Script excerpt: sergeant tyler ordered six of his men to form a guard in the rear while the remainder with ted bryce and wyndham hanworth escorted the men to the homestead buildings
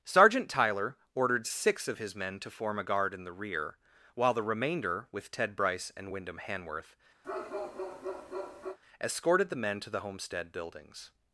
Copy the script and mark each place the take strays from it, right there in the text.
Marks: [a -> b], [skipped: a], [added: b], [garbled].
sergeant tyler ordered six of his men to form a guard in the rear while the remainder with ted bryce and wyndham hanworth escorted the men to the homestead buildings